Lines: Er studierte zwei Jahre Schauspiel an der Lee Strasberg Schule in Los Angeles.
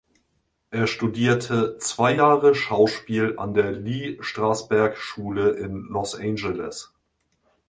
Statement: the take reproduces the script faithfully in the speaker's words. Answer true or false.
true